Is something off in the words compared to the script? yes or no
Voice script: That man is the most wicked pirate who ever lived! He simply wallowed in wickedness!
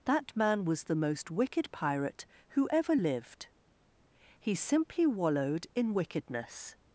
yes